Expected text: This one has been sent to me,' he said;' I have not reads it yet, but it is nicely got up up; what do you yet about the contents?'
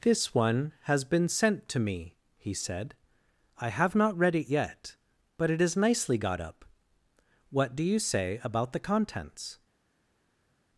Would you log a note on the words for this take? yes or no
yes